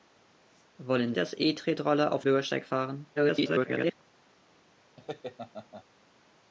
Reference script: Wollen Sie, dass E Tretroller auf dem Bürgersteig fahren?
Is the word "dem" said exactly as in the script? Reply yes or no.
no